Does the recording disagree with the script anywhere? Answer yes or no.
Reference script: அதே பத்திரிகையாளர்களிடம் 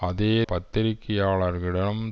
no